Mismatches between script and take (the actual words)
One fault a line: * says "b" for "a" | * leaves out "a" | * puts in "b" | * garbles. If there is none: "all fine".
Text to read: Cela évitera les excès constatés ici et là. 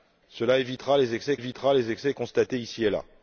* puts in "évitera les excès"